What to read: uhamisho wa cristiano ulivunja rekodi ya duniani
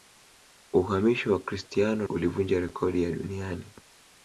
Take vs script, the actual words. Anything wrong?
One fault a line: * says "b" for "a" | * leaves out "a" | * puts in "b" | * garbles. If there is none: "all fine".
all fine